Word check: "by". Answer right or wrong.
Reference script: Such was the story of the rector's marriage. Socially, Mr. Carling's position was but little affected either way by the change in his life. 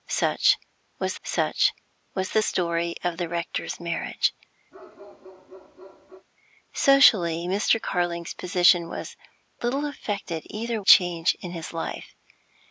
wrong